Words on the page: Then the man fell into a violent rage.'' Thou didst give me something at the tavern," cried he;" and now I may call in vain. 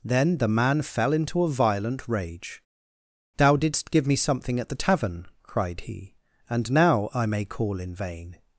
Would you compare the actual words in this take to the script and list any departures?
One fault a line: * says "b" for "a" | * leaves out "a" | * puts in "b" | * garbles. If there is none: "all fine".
all fine